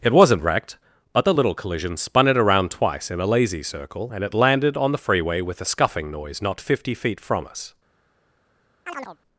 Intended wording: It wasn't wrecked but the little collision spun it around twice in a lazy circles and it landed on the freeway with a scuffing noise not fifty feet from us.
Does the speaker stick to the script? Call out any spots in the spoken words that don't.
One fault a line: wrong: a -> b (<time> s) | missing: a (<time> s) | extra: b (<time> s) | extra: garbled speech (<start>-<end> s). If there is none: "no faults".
wrong: circles -> circle (3.6 s)